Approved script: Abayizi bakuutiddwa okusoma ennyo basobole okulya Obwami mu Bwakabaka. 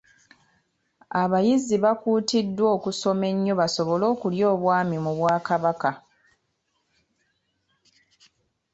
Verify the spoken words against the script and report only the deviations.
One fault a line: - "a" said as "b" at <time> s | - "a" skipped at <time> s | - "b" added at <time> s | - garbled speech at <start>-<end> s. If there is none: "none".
none